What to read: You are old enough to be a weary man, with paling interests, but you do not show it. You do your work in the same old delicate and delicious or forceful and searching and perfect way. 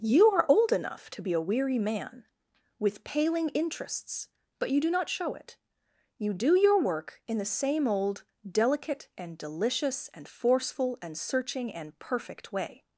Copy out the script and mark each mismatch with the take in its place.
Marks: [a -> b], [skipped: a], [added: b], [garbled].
You are old enough to be a weary man, with paling interests, but you do not show it. You do your work in the same old delicate and delicious [or -> and] forceful and searching and perfect way.